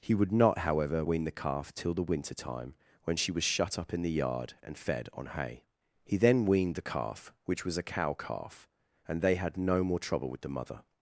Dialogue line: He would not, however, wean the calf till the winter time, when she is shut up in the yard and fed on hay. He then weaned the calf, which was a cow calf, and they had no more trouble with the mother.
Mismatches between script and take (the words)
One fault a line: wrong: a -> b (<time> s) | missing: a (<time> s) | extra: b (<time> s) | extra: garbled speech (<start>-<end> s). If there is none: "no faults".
wrong: is -> was (3.3 s)